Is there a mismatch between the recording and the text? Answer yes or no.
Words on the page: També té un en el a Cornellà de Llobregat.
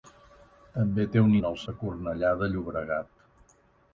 no